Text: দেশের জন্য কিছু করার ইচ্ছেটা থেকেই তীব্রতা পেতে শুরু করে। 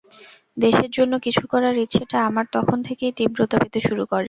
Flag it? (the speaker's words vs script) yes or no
yes